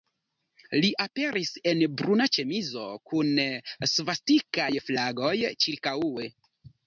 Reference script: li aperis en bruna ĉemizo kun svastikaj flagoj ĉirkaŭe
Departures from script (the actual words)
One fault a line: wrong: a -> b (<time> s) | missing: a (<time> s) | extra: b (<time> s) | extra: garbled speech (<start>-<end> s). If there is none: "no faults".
no faults